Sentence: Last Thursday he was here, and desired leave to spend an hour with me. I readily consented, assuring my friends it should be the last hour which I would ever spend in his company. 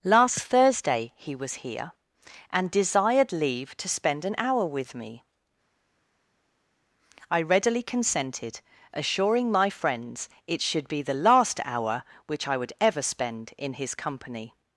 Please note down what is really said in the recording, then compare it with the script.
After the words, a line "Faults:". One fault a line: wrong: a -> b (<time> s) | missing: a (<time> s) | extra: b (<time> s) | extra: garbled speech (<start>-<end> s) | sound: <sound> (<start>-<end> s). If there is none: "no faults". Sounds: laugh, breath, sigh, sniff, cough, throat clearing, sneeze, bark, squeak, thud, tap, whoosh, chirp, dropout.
Last Thursday he was here, and desired leave to spend an hour with me. I readily consented, assuring my friends it should be the last hour which I would ever spend in his company.
Faults:
no faults